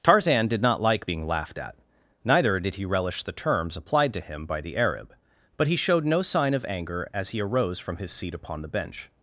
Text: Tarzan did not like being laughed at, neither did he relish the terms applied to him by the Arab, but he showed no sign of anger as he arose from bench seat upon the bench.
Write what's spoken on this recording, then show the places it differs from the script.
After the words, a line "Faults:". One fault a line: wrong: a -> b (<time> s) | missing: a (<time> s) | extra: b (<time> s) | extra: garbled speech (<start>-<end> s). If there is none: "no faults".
Tarzan did not like being laughed at, neither did he relish the terms applied to him by the Arab, but he showed no sign of anger as he arose from his seat upon the bench.
Faults:
wrong: bench -> his (8.0 s)